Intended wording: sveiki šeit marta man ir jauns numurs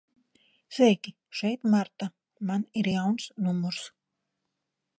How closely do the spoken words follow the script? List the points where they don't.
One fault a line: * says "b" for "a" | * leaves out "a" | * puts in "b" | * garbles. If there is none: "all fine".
all fine